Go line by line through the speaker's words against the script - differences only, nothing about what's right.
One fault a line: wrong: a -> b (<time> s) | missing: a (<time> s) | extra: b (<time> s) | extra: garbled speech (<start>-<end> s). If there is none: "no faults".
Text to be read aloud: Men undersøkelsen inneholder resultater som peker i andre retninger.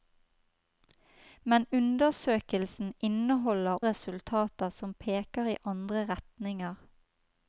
no faults